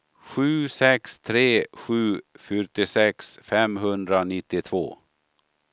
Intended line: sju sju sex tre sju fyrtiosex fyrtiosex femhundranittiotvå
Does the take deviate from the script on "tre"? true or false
false